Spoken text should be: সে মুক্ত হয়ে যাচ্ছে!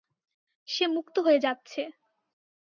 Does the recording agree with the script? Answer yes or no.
yes